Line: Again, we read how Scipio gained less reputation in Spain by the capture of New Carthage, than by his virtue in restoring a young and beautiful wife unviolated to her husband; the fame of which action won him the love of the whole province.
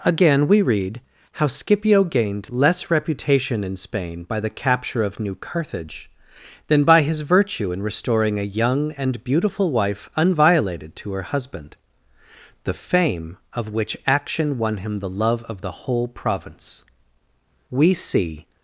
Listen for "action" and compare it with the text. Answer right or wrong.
right